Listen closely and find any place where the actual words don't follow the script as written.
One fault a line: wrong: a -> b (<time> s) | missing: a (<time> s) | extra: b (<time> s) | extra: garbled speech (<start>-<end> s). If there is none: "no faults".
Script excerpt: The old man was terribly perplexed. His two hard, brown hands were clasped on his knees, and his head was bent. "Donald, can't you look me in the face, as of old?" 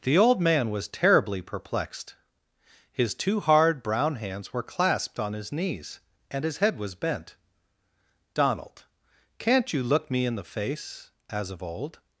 no faults